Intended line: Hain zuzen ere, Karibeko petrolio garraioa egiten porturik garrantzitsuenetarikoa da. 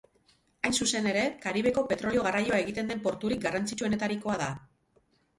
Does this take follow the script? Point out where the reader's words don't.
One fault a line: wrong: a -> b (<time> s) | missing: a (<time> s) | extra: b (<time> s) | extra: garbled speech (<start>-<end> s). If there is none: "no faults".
extra: den (2.9 s)